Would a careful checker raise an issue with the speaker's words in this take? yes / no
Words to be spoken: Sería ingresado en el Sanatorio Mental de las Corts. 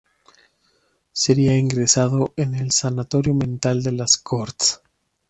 no